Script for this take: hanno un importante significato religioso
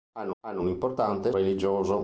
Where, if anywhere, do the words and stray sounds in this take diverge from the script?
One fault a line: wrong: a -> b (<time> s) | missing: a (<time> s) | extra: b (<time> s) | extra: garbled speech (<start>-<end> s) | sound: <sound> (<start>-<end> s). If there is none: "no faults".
extra: hanno (0.4 s)
missing: significato (1.3 s)